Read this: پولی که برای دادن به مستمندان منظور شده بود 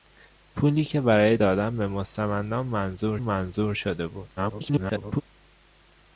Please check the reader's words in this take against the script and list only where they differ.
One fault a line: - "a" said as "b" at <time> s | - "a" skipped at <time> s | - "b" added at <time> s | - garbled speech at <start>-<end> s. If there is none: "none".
- "منظور" added at 3.2 s
- garbled speech at 4.4-5.2 s